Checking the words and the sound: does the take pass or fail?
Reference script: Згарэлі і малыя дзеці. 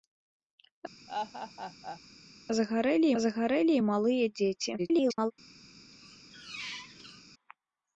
fail